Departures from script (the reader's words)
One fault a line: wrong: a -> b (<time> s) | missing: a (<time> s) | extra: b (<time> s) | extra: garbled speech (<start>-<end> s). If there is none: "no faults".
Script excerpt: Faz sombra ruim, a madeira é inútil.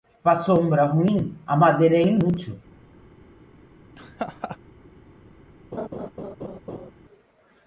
no faults